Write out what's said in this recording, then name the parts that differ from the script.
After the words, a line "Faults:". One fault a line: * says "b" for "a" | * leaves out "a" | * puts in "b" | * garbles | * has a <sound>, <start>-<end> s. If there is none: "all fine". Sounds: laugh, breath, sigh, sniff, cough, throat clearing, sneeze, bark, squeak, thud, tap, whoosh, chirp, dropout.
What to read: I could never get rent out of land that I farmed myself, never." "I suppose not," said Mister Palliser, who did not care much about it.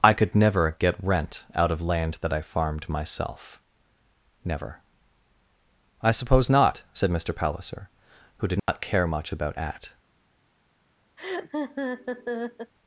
I could never get rent out of land that I farmed myself, never." "I suppose not," said Mister Palliser, who did not care much about at.
Faults:
* has a dropout, 8.6-8.7 s
* says "at" for "it"
* has a laugh, 11.2-12.7 s